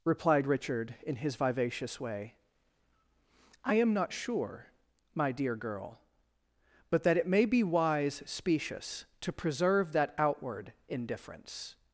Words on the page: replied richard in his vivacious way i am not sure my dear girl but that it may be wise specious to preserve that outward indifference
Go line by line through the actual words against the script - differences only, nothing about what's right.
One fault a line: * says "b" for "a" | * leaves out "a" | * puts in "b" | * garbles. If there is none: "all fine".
all fine